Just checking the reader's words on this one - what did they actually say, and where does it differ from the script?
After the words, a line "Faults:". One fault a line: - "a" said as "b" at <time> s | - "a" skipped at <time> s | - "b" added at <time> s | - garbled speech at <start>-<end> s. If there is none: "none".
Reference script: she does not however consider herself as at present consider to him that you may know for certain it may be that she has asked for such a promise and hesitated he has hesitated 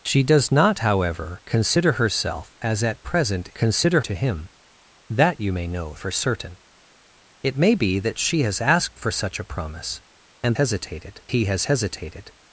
she does not however consider herself as at present consider to him that you may know for certain it may be that she has asked for such a promise and hesitated he has hesitated
Faults:
none